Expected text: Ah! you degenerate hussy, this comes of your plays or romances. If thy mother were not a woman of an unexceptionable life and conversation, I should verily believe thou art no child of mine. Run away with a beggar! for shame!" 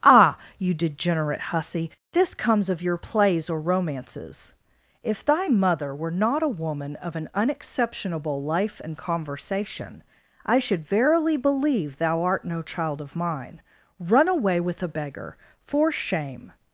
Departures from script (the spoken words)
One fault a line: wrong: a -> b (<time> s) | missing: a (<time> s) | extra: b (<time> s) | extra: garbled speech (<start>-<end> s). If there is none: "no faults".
no faults